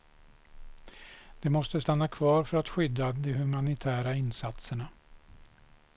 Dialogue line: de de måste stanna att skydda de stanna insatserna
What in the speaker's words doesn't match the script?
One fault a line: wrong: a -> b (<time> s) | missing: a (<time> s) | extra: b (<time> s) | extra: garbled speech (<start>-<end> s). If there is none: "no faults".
missing: de (1.5 s)
extra: kvar för (2.1 s)
wrong: stanna -> humanitära (3.3 s)